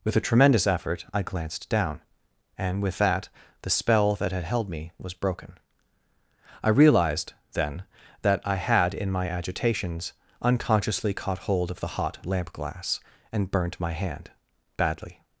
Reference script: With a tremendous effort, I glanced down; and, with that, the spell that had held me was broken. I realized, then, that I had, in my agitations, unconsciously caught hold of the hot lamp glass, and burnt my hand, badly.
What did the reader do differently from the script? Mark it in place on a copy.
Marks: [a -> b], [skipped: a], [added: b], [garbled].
With a tremendous effort, I glanced down; and, with that, the spell that had held me was broken. I realized, then, that I had, in my agitations, unconsciously caught hold of the hot lamp glass, and burnt my hand, badly.